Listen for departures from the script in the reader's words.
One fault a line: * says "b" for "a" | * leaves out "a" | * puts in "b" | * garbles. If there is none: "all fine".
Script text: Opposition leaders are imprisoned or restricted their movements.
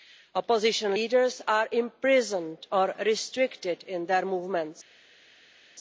* puts in "in"